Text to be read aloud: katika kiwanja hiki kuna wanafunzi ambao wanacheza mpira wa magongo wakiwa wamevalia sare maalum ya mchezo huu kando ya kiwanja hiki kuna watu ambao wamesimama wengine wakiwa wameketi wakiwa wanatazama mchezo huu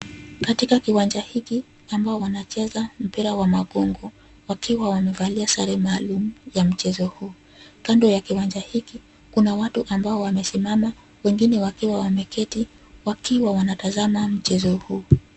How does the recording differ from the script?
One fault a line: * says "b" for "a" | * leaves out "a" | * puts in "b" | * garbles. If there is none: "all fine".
* leaves out "kuna wanafunzi"